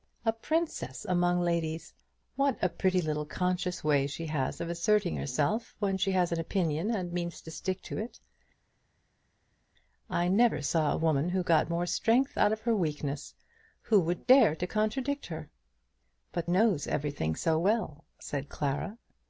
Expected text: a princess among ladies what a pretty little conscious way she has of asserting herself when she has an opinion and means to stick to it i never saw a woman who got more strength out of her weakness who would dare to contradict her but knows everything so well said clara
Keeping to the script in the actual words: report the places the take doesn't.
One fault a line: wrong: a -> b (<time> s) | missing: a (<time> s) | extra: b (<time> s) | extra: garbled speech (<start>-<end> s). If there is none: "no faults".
no faults